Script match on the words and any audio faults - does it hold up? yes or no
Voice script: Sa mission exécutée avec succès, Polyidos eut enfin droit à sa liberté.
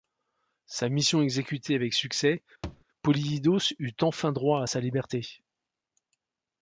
no